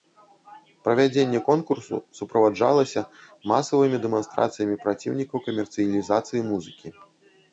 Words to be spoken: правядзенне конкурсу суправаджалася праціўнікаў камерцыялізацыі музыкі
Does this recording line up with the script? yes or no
no